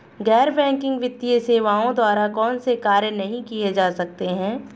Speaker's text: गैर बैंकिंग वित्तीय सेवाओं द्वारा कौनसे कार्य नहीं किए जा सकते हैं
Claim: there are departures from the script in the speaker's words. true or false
false